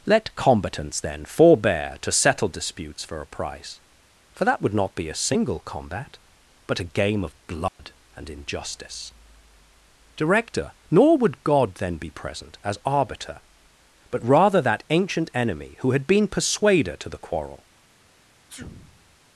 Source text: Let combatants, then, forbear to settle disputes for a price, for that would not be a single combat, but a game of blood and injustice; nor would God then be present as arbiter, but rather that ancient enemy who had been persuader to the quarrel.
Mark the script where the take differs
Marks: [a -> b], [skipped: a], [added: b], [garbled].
Let combatants, then, forbear to settle disputes for a price, for that would not be a single combat, but a game of blood and injustice; [added: director] nor would God then be present as arbiter, but rather that ancient enemy who had been persuader to the quarrel.